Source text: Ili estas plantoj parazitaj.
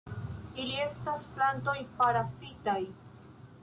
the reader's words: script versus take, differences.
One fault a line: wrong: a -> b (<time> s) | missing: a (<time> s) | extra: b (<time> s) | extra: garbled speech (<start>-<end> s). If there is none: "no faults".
no faults